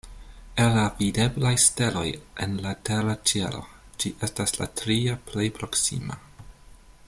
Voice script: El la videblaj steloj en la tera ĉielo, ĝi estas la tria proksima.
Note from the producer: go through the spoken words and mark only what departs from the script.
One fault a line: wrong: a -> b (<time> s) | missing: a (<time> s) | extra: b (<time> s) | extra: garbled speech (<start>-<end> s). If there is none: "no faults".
extra: plej (5.3 s)